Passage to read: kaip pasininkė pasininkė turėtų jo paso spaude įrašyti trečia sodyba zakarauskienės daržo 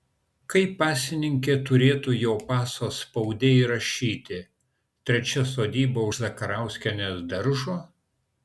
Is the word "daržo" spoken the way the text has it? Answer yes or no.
yes